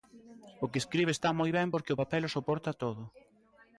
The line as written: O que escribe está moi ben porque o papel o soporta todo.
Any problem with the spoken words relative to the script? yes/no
no